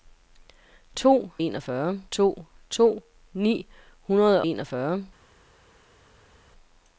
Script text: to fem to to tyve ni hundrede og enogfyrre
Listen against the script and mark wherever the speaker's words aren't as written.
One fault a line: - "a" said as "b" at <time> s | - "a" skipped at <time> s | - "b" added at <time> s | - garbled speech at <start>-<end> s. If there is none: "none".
- "fem" said as "enogfyrre" at 1.4 s
- "tyve" skipped at 3.0 s
- "og" skipped at 4.4 s